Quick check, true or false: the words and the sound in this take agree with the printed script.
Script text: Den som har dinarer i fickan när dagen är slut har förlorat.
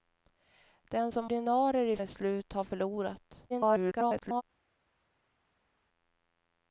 false